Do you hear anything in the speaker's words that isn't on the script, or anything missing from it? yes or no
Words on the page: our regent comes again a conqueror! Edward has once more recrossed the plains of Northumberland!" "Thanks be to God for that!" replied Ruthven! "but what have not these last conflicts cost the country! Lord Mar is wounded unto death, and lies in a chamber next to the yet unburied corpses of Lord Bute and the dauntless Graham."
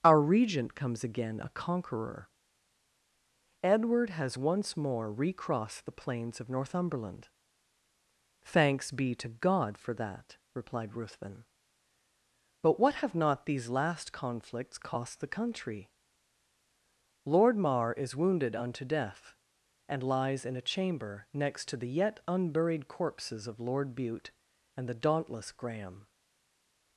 no